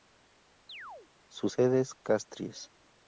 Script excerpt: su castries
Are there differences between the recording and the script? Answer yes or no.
yes